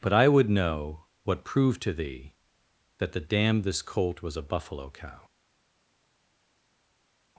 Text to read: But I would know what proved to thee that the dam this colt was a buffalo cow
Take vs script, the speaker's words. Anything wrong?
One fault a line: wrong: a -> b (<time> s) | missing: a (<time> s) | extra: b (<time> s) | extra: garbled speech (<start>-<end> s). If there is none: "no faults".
no faults